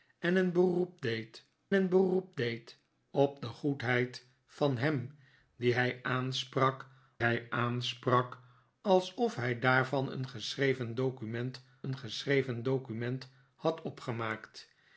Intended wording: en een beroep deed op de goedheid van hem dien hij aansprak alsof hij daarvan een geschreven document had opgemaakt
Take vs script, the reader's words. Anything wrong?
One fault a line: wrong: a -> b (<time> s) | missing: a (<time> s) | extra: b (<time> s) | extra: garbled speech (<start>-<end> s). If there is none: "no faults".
extra: een beroep deed (1.7 s)
extra: hij aansprak (7.2 s)
extra: een geschreven document (11.8 s)